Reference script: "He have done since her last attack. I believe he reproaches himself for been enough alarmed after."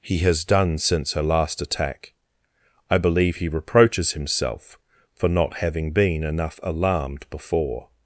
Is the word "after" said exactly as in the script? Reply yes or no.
no